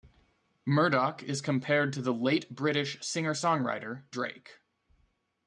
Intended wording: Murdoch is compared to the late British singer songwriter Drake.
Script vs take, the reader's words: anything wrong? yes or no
no